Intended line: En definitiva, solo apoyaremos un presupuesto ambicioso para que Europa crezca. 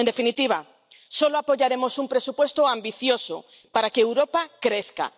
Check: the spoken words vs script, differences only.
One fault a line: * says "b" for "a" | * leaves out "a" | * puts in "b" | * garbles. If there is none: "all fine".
all fine